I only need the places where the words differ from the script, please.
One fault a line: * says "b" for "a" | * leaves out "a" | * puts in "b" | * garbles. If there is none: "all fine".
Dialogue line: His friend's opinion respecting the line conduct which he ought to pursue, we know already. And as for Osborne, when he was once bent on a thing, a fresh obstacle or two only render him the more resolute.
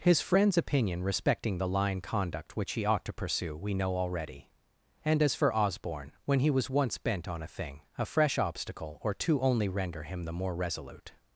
all fine